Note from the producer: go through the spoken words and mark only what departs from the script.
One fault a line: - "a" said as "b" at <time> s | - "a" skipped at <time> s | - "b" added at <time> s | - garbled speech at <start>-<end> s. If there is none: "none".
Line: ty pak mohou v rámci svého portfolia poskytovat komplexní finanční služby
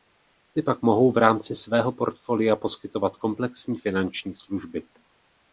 none